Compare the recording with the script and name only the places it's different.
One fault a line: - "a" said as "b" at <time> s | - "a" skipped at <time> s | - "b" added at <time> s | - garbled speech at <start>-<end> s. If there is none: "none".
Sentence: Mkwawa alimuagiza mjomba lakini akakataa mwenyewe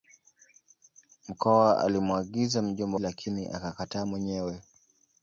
none